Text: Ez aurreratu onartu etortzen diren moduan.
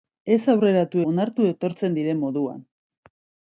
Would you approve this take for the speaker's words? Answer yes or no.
yes